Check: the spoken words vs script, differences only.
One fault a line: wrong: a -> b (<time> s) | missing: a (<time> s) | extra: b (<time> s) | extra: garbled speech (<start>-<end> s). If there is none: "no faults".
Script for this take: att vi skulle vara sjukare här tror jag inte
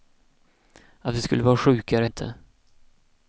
missing: här tror jag (2.0 s)